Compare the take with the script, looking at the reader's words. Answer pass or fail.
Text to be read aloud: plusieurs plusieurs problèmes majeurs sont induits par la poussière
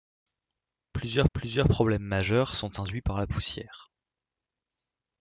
pass